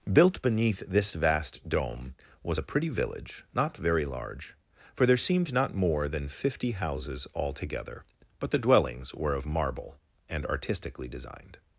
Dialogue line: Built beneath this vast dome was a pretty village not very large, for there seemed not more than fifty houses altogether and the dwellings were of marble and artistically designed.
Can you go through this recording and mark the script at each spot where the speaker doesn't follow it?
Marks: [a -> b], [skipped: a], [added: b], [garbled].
Built beneath this vast dome was a pretty village not very large, for there seemed not more than fifty houses altogether [and -> but] the dwellings were of marble and artistically designed.